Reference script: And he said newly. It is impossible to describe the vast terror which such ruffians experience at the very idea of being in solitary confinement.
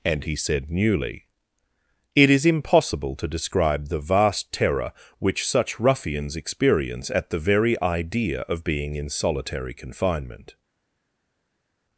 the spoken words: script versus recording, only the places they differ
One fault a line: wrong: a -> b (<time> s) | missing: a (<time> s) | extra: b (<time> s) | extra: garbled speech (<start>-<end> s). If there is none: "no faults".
no faults